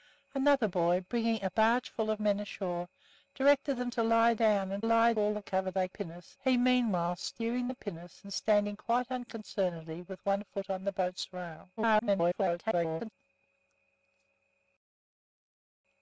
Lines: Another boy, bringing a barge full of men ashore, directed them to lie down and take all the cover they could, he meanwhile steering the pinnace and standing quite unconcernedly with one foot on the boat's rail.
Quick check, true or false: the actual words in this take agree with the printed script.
false